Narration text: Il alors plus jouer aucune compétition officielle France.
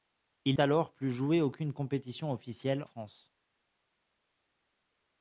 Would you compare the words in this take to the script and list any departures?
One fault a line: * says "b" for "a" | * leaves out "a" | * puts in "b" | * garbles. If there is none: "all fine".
all fine